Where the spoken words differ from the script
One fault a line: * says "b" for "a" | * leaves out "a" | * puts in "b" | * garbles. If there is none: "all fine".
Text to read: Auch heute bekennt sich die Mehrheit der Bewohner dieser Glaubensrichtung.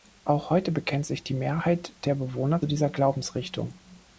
all fine